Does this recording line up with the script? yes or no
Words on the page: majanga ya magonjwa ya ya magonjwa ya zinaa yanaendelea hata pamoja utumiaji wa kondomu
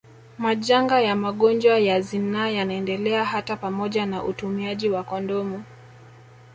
no